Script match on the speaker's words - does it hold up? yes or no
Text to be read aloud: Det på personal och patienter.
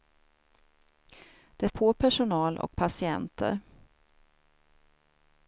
yes